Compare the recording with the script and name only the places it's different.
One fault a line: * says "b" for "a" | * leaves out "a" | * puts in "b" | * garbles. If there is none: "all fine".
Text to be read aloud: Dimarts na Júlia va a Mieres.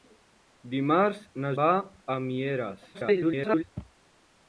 * leaves out "Júlia"
* garbles